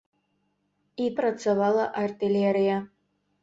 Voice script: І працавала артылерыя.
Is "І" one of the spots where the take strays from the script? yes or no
no